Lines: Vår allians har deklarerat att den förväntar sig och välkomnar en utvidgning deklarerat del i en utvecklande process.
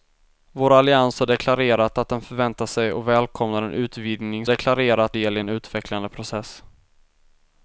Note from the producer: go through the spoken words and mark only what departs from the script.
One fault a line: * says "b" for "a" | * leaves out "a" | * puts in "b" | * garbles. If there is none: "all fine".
all fine